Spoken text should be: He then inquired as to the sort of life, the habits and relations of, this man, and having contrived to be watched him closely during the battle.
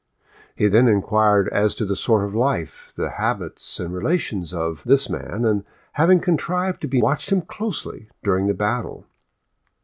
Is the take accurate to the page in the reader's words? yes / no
yes